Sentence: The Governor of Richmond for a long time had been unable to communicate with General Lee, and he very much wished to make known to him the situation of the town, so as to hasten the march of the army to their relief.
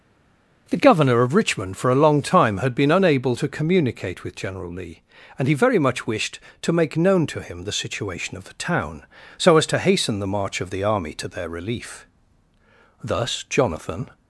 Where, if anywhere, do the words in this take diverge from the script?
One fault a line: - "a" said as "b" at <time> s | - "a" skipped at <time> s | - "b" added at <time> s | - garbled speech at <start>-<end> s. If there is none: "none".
- "Thus Jonathan" added at 13.0 s